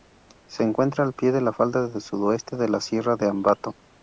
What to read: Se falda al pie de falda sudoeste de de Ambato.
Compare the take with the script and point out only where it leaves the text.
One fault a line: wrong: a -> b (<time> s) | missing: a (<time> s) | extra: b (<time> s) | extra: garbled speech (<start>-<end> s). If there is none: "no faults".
wrong: falda -> encuentra (0.6 s)
extra: la (1.4 s)
extra: la Sierra (2.7 s)